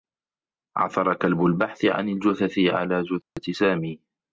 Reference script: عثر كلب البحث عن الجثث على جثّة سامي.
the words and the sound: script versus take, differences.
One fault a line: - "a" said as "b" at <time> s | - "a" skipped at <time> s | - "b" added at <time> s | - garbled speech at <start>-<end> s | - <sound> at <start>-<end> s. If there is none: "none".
- dropout at 3.2-3.4 s